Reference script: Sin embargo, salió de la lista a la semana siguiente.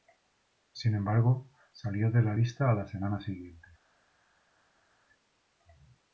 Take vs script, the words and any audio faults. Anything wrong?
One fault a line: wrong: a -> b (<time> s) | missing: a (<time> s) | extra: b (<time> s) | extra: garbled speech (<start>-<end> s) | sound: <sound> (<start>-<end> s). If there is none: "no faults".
no faults